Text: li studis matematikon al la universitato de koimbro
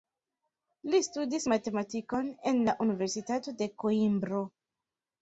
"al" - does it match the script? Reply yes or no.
no